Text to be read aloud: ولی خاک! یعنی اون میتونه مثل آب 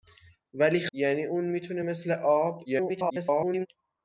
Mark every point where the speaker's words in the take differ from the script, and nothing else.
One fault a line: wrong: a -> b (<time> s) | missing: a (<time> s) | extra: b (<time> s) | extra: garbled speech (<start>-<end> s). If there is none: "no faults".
missing: خاک (0.9 s)
extra: garbled speech (2.6-3.7 s)